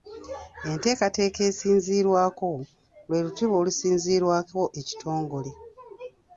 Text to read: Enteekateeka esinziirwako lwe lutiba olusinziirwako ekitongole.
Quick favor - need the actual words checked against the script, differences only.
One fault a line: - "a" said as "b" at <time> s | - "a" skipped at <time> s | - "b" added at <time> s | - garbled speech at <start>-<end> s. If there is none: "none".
none